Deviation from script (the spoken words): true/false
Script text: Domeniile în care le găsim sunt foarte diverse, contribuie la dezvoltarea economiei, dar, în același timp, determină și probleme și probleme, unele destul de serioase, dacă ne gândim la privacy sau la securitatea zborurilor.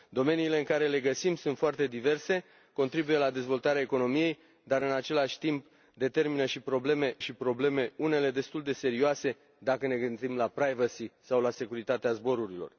false